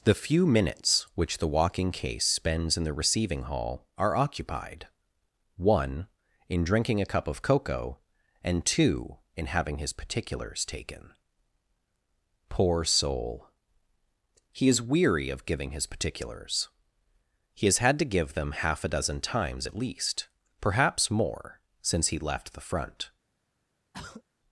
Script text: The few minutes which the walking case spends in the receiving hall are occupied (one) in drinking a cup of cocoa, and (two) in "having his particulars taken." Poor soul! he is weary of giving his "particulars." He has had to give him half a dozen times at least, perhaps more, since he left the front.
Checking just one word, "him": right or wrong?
wrong